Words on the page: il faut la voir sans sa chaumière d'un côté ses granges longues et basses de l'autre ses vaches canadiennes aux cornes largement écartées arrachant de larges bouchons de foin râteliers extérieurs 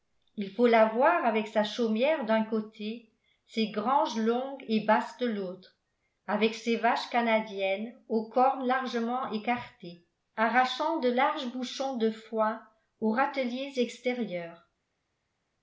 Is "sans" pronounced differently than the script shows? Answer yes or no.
yes